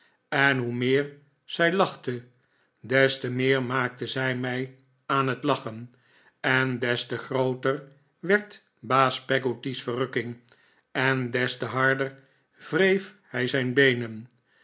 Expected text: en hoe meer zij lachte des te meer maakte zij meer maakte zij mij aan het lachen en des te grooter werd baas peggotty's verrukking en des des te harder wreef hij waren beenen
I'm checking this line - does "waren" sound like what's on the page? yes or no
no